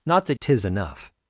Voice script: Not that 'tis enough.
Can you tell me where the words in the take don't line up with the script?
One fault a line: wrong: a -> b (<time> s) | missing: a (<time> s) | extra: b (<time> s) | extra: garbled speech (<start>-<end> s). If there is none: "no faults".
no faults